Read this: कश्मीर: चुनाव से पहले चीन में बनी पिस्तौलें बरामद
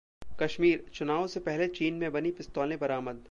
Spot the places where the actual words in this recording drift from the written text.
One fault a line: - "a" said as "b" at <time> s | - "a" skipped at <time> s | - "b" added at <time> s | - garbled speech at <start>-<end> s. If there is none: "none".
none